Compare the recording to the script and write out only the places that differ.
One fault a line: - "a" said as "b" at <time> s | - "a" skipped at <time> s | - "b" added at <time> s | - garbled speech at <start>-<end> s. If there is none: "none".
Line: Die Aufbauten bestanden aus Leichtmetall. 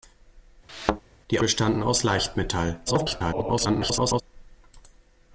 - "Aufbauten" skipped at 1.4 s
- garbled speech at 2.9-4.2 s